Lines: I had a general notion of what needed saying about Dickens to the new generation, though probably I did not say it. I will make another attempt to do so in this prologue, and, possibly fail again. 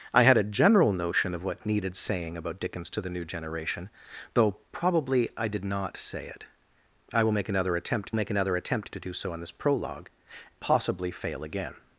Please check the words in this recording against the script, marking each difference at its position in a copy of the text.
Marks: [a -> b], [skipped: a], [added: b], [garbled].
I had a general notion of what needed saying about Dickens to the new generation, though probably I did not say it. I will make another attempt [added: make another attempt] to do so in this prologue, [skipped: and,] possibly fail again.